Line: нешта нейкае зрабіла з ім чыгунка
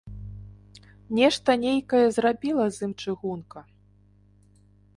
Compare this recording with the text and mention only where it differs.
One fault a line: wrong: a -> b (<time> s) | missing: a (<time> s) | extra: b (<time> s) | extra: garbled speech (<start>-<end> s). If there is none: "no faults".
no faults